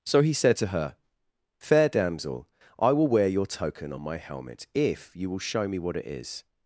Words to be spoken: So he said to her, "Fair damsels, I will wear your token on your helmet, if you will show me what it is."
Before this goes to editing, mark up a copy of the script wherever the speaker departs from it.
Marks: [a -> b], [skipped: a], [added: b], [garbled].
So he said to her, "Fair [damsels, -> damsel] I will wear your token on [your -> my] helmet, if you will show me what it is."